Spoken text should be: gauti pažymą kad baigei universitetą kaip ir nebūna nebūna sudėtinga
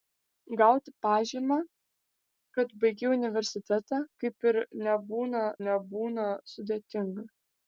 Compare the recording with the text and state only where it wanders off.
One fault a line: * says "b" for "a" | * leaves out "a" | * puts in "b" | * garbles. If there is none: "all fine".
all fine